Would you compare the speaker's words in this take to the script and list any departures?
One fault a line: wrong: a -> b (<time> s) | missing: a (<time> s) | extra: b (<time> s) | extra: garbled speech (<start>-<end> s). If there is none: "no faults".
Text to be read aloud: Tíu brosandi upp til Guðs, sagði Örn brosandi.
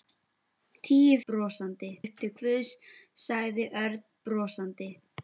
no faults